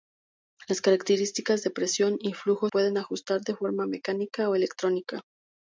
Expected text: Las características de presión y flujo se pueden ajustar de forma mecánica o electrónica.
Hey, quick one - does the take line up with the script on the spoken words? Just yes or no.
no